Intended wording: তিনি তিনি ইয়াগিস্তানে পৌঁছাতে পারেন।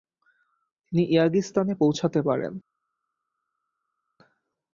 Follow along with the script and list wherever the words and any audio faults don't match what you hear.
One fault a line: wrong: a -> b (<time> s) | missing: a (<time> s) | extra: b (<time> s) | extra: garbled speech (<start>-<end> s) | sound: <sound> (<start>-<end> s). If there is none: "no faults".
missing: তিনি (1.0 s)